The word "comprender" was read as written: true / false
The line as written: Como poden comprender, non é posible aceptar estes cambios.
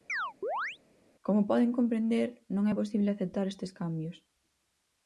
true